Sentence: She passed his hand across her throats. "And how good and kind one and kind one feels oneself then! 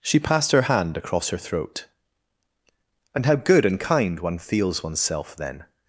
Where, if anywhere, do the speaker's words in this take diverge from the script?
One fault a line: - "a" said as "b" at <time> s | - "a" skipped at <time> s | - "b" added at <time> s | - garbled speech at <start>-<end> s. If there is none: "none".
- "his" said as "her" at 0.5 s
- "throats" said as "throat" at 1.4 s
- "and kind one" skipped at 4.4 s